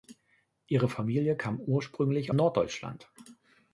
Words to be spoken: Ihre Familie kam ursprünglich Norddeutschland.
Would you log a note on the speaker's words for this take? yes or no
no